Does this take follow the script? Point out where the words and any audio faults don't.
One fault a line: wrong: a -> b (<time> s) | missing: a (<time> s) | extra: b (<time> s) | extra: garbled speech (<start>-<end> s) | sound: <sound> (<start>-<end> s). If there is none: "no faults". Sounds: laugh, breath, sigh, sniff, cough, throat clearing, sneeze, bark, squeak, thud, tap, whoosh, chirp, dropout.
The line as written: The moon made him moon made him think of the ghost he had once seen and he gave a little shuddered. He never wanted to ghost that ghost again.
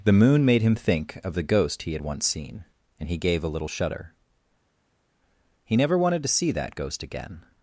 missing: moon made him (0.8 s)
wrong: shuddered -> shudder (3.7 s)
wrong: ghost -> see (6.3 s)